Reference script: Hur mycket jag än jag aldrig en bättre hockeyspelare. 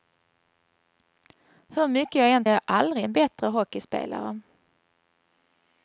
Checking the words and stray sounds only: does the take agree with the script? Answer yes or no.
yes